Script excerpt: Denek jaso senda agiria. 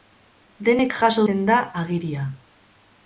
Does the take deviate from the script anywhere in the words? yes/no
no